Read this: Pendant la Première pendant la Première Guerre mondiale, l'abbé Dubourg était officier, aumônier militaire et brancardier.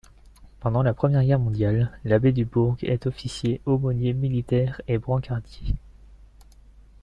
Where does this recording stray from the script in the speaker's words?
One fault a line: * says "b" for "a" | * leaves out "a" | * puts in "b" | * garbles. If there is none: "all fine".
* leaves out "pendant la Première"
* says "est" for "était"